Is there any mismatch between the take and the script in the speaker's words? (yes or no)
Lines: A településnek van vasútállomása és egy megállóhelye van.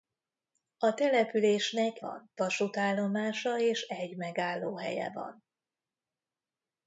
no